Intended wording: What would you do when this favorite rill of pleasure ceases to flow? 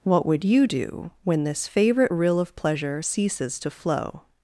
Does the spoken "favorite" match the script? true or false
true